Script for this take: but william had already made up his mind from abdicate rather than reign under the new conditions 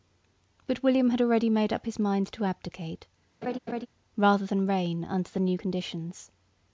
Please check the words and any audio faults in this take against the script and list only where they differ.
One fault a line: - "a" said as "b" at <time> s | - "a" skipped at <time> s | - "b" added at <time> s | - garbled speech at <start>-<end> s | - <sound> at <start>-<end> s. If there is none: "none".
- "from" said as "to" at 2.3 s
- laugh at 3.4-3.9 s